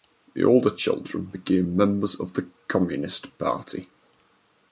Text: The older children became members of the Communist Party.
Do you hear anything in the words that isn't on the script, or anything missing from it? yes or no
no